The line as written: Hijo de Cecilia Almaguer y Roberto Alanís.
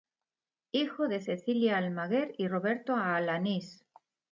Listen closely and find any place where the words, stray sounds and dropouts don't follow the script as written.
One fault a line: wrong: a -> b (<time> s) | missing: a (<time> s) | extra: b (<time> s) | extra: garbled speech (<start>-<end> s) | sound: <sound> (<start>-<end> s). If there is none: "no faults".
no faults